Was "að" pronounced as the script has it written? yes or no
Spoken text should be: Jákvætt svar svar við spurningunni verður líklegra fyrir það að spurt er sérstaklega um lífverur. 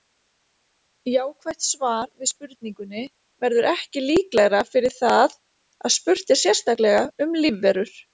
yes